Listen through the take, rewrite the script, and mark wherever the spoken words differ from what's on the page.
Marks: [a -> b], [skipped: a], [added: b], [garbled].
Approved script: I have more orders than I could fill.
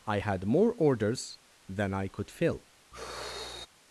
I [have -> had] more orders than I could fill.